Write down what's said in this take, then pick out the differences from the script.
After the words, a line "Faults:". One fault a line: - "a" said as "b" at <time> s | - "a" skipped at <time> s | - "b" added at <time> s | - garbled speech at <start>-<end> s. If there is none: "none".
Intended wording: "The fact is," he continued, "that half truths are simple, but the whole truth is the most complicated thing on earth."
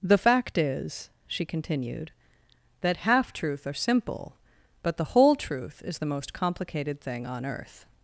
"The fact is," she continued, "that half truth are simple, but the whole truth is the most complicated thing on earth."
Faults:
- "he" said as "she" at 1.3 s
- "truths" said as "truth" at 3.3 s